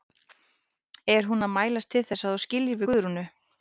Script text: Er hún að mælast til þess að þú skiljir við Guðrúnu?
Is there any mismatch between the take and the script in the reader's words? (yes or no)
yes